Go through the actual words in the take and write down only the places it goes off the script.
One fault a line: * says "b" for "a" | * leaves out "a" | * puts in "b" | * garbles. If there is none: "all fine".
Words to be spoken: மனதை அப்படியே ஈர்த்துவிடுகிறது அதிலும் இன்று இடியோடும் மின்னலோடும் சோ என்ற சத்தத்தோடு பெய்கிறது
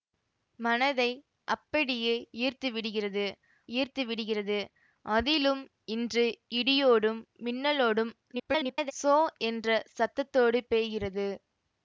* puts in "ஈர்த்துவிடுகிறது"
* garbles